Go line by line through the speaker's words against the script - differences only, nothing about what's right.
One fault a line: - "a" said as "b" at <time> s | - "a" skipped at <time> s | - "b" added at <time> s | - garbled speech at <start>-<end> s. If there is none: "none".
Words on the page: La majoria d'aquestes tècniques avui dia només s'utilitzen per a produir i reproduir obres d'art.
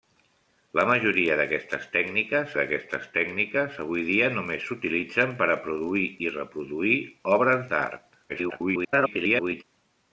- "d'aquestes tècniques" added at 2.6 s
- garbled speech at 8.3-9.6 s